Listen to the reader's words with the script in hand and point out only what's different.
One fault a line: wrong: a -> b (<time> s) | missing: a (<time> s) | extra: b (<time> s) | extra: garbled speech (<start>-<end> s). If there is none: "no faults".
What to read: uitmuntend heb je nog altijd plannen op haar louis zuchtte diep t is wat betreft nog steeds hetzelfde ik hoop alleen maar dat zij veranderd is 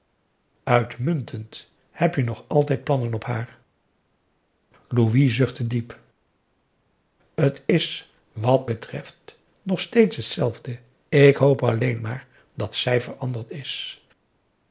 no faults